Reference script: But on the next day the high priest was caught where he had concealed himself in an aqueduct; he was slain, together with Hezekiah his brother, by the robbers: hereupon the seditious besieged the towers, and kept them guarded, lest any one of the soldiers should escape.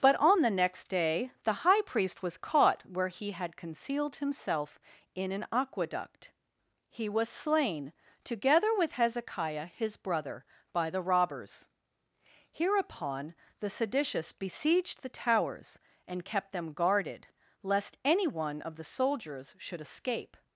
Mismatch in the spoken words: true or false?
false